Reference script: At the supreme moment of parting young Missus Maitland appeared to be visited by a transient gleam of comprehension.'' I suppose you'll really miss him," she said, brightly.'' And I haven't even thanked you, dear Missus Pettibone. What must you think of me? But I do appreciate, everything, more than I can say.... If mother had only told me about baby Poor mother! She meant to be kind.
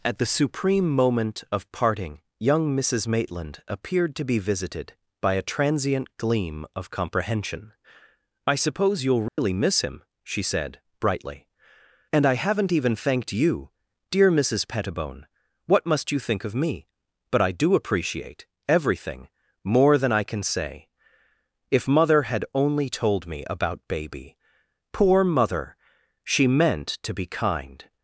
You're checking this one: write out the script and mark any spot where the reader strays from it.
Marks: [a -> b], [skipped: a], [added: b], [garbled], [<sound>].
At the supreme moment of parting young Missus Maitland appeared to be visited by a transient gleam of comprehension.'' I suppose you'll really [dropout] miss him," she said, brightly.'' And I haven't even thanked you, dear Missus Pettibone. What must you think of me? But I do appreciate, everything, more than I can say.... If mother had only told me about baby Poor mother! She meant to be kind.